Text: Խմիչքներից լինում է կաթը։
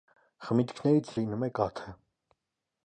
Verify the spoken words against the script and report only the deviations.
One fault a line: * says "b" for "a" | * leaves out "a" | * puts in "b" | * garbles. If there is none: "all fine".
all fine